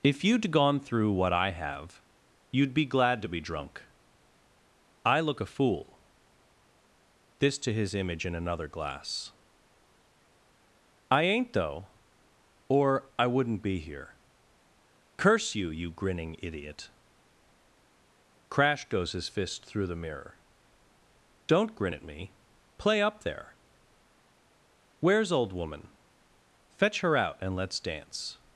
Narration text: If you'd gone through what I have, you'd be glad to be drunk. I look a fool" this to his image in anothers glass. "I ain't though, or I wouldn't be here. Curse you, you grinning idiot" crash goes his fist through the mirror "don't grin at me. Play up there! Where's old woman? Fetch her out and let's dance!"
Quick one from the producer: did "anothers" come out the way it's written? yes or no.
no